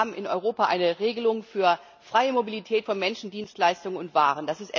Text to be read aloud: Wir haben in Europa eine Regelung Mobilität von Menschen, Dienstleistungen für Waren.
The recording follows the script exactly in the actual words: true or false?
false